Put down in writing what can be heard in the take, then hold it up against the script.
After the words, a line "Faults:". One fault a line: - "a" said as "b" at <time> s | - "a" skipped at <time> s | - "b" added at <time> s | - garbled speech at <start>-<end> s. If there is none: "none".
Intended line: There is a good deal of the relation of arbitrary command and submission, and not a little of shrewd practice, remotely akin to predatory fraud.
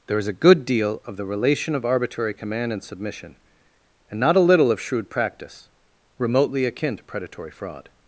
There is a good deal of the relation of arbitrary command and submission, and not a little of shrewd practice, remotely akin to predatory fraud.
Faults:
none